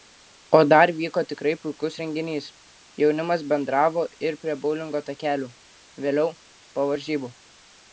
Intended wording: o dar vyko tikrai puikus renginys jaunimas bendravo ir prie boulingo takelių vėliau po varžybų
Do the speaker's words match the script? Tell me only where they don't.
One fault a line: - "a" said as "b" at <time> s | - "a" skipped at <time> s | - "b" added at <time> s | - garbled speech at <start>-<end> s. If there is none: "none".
none